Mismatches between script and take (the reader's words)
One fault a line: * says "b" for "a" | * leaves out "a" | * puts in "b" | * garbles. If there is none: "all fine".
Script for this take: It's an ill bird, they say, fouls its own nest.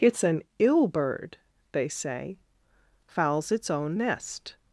all fine